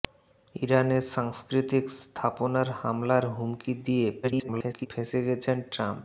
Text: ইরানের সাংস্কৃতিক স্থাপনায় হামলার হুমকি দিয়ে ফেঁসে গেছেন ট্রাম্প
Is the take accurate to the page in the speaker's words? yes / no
no